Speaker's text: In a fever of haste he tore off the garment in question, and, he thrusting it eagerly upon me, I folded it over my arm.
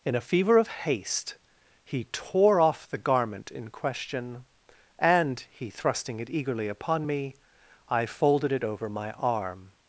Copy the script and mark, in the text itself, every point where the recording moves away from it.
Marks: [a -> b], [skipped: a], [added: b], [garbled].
In a fever of haste he tore off the garment in question, and, he thrusting it eagerly upon me, I folded it over my arm.